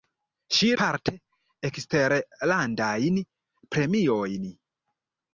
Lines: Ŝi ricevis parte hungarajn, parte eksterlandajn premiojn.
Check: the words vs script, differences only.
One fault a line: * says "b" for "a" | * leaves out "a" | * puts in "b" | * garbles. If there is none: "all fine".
* leaves out "ricevis parte hungarajn"